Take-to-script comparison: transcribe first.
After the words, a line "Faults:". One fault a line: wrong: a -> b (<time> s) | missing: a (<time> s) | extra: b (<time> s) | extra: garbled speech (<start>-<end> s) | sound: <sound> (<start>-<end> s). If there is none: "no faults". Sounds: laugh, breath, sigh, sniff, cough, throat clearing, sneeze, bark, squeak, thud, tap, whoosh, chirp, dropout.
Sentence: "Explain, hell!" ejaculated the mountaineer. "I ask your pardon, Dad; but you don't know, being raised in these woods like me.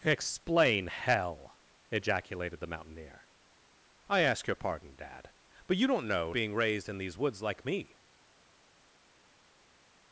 "Explain, hell!" ejaculated the mountaineer. "I ask your pardon, Dad; but you don't know, being raised in these woods like me.
Faults:
no faults